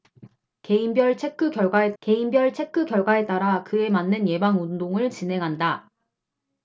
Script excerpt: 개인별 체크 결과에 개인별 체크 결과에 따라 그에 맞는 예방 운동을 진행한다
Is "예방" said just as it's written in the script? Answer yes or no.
yes